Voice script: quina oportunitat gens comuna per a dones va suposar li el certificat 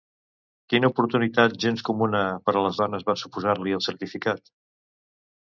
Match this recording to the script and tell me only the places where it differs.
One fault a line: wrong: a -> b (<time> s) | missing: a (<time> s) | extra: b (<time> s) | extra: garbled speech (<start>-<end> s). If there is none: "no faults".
extra: les (2.7 s)